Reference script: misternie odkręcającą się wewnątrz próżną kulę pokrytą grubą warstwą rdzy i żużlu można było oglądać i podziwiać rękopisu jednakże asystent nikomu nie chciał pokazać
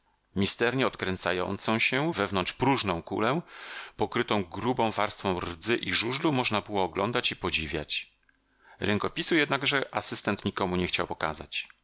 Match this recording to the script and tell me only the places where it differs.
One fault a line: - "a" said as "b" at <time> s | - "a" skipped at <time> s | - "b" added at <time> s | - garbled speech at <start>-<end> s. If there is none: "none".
none